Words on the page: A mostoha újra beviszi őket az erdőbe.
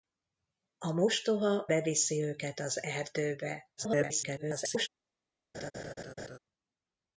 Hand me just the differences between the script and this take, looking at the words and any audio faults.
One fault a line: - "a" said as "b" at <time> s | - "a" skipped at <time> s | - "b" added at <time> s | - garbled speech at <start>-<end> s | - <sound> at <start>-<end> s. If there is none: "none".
- "újra" skipped at 1.6 s
- garbled speech at 3.8-4.9 s
- laugh at 5.5-6.4 s